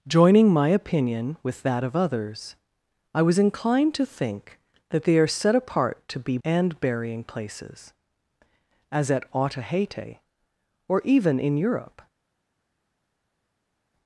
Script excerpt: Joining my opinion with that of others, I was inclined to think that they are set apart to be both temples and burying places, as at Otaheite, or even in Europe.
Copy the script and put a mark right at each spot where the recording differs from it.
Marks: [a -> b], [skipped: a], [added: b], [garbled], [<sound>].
Joining my opinion with that of others, I was inclined to think that they are set apart to be [skipped: both temples] and burying places, as at Otaheite, or even in Europe.